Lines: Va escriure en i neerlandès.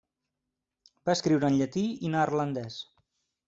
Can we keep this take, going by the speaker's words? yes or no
no